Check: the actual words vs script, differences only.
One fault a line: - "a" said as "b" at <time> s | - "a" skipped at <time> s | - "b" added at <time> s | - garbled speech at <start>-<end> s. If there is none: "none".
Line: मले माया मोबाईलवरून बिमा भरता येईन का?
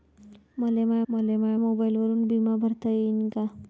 - "मले माया" added at 1.1 s